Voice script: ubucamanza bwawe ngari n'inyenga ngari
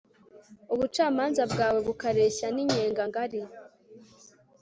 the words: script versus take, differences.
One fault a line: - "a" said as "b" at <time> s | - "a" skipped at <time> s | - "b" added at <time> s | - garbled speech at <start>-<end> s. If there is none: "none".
- "ngari" said as "bukareshya" at 1.9 s